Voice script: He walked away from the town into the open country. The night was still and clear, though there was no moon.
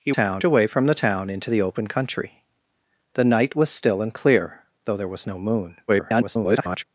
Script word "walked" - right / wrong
wrong